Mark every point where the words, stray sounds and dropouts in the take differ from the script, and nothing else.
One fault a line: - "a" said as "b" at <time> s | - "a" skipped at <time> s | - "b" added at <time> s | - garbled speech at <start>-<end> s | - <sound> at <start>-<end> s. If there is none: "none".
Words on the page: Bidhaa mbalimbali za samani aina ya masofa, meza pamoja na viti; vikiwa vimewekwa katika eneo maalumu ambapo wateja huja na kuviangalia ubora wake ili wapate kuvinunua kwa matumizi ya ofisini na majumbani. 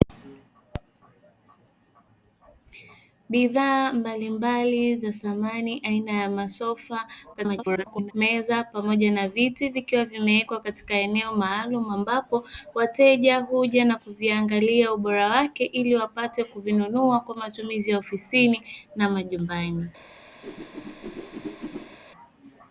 - garbled speech at 7.3-8.1 s
- whoosh at 20.4-22.0 s